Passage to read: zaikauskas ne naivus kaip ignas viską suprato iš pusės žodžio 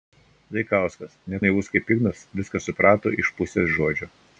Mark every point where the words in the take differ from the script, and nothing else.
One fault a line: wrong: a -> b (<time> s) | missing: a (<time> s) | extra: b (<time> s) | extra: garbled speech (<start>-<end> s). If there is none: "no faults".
no faults